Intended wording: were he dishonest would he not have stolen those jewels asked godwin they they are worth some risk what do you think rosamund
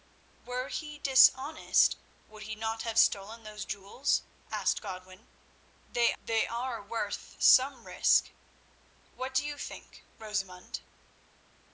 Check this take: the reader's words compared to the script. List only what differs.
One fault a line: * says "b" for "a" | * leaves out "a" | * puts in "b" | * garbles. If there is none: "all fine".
all fine